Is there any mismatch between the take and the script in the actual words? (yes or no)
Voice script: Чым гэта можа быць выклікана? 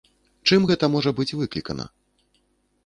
no